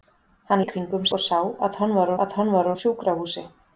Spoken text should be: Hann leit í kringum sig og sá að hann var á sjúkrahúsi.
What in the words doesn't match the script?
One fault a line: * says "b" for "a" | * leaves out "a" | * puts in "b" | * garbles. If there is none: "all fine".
* leaves out "leit"
* leaves out "sig"
* puts in "að hann var"